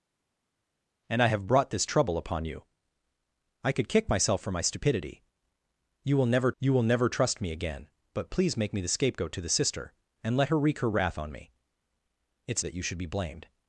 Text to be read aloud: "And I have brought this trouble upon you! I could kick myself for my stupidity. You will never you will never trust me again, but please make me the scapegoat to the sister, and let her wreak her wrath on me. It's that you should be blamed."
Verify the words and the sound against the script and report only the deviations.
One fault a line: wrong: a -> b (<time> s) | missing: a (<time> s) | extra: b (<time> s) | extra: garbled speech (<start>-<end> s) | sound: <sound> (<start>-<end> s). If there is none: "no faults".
no faults